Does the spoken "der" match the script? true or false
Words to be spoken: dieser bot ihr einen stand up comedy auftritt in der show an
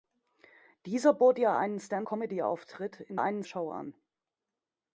false